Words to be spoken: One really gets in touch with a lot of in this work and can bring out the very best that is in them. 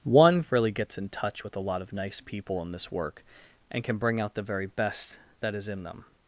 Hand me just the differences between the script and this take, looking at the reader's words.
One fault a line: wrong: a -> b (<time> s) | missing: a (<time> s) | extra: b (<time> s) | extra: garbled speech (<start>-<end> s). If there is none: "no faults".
extra: nice people (1.9 s)